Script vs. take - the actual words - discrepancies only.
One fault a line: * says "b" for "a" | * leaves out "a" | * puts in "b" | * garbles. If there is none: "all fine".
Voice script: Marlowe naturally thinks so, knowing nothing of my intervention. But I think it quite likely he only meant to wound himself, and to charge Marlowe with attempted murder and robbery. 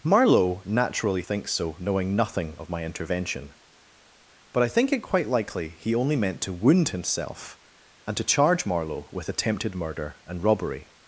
all fine